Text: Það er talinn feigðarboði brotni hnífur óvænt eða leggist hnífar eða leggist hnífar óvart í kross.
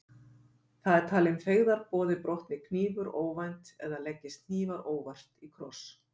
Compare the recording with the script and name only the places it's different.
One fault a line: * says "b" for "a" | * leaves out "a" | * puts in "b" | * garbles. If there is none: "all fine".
* leaves out "eða leggist hnífar"